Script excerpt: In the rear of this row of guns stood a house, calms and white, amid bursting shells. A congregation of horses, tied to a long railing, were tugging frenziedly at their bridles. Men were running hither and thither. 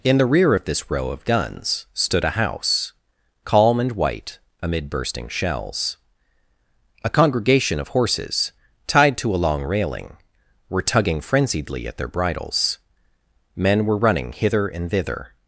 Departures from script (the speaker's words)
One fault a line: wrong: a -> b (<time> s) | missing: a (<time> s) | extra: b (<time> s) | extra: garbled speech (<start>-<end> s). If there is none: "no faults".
wrong: calms -> calm (3.4 s)